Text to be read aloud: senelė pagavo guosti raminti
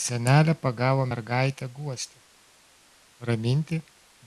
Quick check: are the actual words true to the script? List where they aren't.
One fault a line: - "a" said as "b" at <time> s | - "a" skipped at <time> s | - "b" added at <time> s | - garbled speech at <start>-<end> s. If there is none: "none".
- "mergaitę" added at 1.1 s